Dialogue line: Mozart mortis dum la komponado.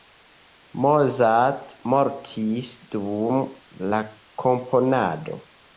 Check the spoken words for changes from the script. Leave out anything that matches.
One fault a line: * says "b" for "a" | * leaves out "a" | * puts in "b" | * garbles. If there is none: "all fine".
all fine